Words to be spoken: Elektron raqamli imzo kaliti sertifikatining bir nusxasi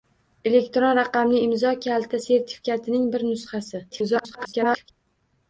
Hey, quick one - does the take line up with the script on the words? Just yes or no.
no